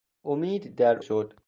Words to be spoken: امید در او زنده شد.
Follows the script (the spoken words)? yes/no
no